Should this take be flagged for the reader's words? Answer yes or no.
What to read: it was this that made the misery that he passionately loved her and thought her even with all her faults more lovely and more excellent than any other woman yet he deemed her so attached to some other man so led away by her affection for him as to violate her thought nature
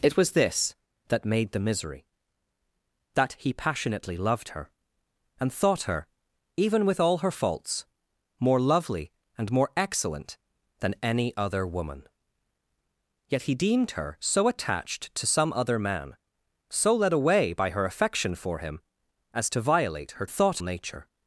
no